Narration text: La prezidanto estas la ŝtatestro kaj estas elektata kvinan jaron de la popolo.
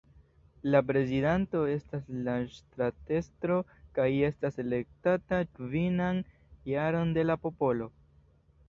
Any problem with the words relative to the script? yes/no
no